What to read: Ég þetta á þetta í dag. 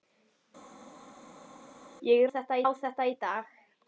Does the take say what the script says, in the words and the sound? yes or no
yes